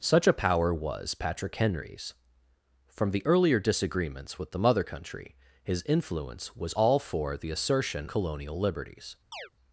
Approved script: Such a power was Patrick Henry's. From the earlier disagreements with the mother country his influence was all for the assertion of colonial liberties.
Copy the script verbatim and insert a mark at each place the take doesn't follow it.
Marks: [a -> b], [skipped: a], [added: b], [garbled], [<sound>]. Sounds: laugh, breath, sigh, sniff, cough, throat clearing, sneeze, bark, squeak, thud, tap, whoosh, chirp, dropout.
Such a power was Patrick Henry's. From the earlier disagreements with the mother country his influence was all for the assertion [skipped: of] colonial liberties. [chirp]